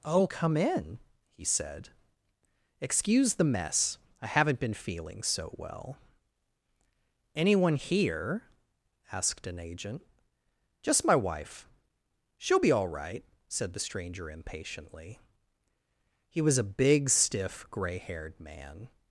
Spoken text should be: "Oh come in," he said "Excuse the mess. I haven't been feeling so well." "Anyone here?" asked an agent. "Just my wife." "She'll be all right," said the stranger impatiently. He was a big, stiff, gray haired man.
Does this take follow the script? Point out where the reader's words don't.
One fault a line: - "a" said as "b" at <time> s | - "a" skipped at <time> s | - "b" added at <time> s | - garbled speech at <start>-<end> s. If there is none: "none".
none